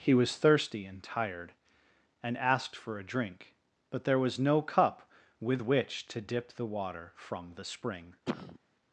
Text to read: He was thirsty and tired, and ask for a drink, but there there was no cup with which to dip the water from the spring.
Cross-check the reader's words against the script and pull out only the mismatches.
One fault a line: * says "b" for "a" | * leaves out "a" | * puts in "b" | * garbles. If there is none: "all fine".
* says "asked" for "ask"
* leaves out "there"